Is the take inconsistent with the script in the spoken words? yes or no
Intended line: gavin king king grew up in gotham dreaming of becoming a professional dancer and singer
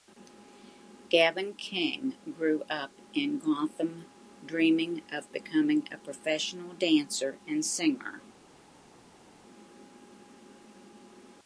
yes